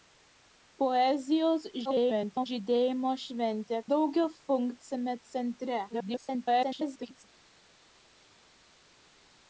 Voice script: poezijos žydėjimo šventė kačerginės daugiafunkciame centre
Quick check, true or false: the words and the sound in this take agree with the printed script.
false